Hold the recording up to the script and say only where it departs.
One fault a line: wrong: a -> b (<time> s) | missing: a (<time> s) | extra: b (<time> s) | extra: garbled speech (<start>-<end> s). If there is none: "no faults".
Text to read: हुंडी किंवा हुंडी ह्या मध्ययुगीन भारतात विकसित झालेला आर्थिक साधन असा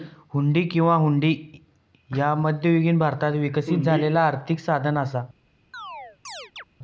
no faults